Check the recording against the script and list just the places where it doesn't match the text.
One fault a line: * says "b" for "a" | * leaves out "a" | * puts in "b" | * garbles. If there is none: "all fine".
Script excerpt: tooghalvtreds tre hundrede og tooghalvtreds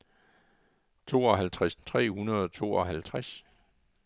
all fine